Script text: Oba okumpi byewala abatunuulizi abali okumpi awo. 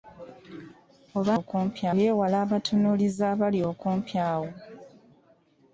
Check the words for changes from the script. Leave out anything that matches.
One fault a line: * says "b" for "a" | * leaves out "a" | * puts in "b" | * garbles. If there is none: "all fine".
all fine